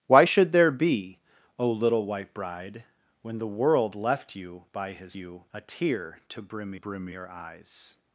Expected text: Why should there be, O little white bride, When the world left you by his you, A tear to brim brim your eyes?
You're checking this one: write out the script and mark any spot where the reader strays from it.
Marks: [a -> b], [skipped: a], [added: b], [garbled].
Why should there be, O little white bride, When the world left you by his you, A tear to brim brim your eyes?